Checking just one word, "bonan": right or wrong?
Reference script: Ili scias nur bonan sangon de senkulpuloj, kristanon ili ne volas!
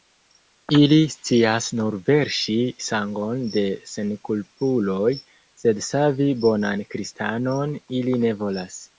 wrong